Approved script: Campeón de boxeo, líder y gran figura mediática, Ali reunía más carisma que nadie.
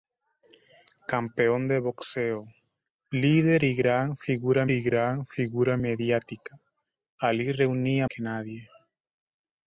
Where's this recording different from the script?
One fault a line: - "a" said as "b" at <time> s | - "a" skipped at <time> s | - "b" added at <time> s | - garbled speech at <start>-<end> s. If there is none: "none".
- "y gran figura" added at 4.7 s
- "más carisma" skipped at 8.1 s